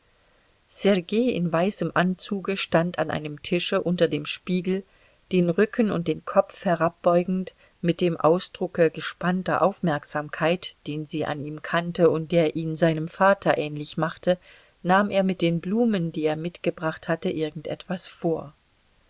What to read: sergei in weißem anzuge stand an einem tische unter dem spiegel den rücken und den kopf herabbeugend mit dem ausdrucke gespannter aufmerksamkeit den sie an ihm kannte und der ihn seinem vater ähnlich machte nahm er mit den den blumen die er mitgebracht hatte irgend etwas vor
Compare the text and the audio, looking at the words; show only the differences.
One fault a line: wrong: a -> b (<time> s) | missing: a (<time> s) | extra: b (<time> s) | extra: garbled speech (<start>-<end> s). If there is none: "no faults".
missing: den (15.6 s)